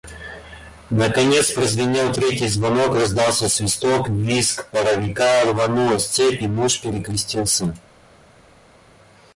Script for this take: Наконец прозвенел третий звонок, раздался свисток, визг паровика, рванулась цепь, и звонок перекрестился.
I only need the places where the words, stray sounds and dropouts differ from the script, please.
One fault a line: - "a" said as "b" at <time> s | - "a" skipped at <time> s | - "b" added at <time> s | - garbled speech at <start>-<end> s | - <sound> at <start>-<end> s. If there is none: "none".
- "звонок" said as "муж" at 6.5 s